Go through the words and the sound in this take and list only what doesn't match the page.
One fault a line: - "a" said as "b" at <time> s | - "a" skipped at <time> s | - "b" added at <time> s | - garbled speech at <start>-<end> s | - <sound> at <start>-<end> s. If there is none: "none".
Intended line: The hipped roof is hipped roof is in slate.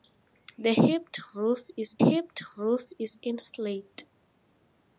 none